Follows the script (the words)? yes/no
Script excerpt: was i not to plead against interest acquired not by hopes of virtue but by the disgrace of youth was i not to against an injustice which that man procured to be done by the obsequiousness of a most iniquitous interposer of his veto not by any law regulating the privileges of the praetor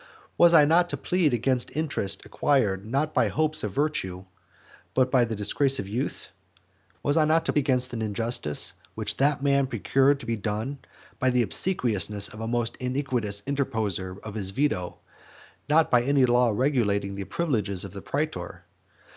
yes